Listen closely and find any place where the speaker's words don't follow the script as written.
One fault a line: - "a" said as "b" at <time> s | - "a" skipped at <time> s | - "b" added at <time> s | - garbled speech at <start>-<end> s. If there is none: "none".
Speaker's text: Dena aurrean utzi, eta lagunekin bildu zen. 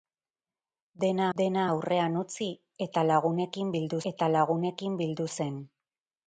- "dena" added at 1.4 s
- "eta lagunekin bildu" added at 4.1 s